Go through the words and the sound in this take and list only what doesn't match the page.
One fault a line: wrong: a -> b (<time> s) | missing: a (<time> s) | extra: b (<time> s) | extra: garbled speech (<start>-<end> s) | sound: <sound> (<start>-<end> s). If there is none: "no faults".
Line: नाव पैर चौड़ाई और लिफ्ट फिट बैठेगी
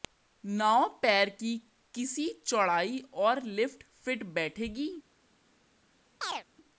extra: की किसी (1.3 s)
sound: chirp (6.2-6.4 s)